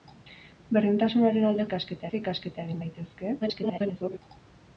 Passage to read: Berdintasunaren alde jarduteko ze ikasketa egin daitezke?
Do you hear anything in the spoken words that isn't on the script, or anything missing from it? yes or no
yes